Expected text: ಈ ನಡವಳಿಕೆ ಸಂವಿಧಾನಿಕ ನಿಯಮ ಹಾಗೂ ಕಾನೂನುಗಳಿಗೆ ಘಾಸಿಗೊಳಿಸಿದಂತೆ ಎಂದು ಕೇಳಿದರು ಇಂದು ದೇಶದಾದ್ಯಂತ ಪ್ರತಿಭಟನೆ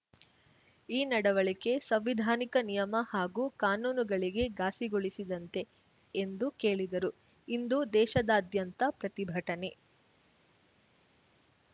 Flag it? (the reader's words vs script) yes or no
no